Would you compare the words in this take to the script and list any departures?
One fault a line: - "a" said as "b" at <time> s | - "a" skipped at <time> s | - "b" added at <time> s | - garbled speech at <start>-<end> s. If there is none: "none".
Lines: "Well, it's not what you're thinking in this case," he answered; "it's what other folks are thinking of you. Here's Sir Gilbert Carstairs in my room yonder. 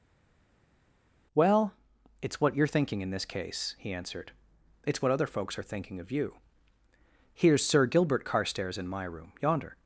- "not" skipped at 2.4 s